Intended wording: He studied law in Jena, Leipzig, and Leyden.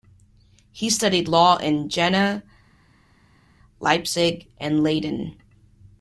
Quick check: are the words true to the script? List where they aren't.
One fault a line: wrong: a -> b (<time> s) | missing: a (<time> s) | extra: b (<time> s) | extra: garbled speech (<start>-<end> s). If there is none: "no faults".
no faults